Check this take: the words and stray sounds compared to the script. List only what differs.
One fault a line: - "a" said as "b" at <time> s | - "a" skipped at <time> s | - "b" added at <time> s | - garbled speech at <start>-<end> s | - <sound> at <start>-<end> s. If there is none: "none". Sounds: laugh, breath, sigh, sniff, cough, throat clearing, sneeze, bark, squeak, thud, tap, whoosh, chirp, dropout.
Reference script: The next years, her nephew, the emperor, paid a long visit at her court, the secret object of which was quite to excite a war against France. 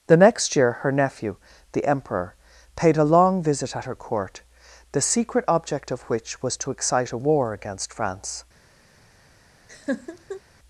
- "years" said as "year" at 0.6 s
- "quite" skipped at 6.6 s
- laugh at 9.7-10.4 s